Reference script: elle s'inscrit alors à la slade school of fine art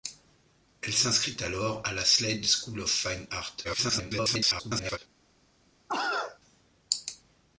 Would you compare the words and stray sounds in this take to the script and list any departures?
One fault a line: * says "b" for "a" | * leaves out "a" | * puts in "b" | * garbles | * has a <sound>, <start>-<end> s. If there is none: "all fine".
* garbles
* has a cough, 5.9-6.4 s